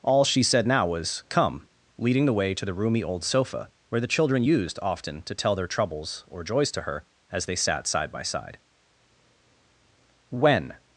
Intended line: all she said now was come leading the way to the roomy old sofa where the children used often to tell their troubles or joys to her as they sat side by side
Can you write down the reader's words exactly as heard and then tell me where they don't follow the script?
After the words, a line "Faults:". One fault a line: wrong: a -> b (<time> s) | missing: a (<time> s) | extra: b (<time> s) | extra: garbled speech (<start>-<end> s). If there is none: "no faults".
all she said now was come leading the way to the roomy old sofa where the children used often to tell their troubles or joys to her as they sat side by side when
Faults:
extra: when (10.3 s)